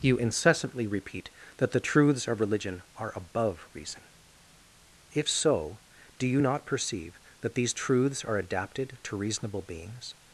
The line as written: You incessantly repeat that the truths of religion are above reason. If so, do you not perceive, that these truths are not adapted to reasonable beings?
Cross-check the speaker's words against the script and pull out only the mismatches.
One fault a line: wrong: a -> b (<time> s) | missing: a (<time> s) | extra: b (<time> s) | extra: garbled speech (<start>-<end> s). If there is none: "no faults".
missing: not (8.4 s)